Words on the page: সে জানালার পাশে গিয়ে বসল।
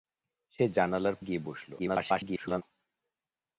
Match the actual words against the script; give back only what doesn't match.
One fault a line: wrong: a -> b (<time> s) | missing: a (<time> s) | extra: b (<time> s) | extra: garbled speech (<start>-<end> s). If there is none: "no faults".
missing: পাশে (1.1 s)
extra: garbled speech (1.8-2.6 s)